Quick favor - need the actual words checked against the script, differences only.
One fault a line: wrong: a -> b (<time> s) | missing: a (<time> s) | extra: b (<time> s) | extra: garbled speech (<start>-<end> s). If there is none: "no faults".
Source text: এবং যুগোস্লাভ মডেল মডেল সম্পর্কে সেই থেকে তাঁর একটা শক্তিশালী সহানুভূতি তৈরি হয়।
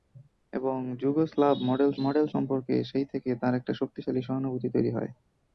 no faults